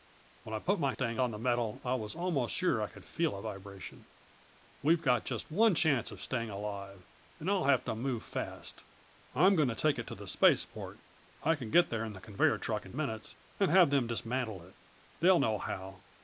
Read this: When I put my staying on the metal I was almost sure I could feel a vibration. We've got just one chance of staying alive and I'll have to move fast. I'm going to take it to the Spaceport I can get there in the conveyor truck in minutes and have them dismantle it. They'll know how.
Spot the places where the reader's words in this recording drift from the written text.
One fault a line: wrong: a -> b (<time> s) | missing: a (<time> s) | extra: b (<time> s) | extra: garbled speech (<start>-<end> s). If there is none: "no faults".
no faults